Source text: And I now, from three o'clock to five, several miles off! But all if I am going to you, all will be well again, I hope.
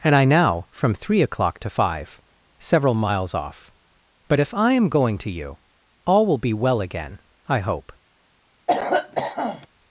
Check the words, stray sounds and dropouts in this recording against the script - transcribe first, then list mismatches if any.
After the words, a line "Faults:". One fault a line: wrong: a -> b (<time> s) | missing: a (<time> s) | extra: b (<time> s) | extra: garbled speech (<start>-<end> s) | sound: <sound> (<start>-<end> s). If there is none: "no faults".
And I now, from three o'clock to five, several miles off! But if I am going to you, all will be well again, I hope.
Faults:
missing: all (4.4 s)
sound: cough (8.7-9.7 s)